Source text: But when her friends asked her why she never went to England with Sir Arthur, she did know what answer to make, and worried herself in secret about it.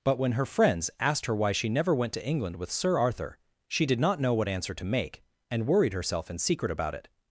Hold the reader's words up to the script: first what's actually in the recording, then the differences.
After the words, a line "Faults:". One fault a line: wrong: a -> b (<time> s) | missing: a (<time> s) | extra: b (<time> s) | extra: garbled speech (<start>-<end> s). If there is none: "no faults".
But when her friends asked her why she never went to England with Sir Arthur, she did not know what answer to make, and worried herself in secret about it.
Faults:
extra: not (4.0 s)